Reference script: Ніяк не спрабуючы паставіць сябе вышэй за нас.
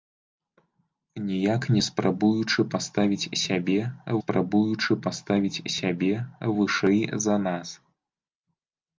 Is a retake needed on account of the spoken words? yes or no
yes